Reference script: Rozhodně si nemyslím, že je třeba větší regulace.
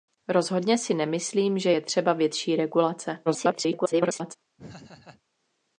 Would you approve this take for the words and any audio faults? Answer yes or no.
no